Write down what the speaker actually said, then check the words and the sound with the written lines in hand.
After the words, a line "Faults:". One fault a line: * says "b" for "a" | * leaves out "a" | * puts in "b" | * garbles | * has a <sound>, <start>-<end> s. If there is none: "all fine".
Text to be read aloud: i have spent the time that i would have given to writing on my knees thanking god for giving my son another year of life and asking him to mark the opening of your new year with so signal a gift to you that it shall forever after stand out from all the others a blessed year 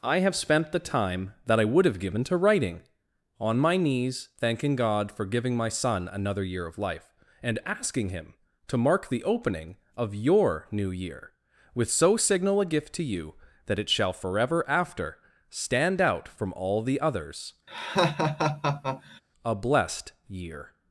i have spent the time that i would have given to writing on my knees thanking god for giving my son another year of life and asking him to mark the opening of your new year with so signal a gift to you that it shall forever after stand out from all the others a blessed year
Faults:
* has a laugh, 17.7-19.2 s